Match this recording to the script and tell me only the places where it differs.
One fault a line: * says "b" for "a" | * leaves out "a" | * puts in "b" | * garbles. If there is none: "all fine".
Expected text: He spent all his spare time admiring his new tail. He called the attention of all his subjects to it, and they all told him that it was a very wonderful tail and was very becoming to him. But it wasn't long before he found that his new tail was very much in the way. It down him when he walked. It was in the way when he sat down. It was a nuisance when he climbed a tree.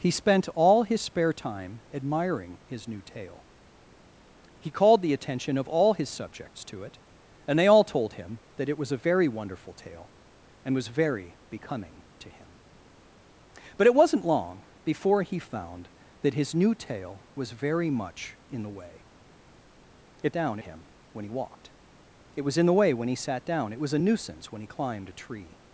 all fine